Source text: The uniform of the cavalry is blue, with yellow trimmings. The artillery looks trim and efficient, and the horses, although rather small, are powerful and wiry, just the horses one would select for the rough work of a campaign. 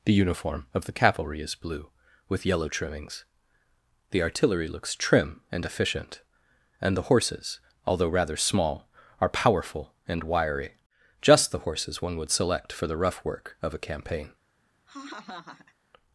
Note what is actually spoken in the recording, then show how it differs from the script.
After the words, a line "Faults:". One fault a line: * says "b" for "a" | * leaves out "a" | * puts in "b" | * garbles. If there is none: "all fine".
The uniform of the cavalry is blue, with yellow trimmings. The artillery looks trim and efficient, and the horses, although rather small, are powerful and wiry, just the horses one would select for the rough work of a campaign.
Faults:
all fine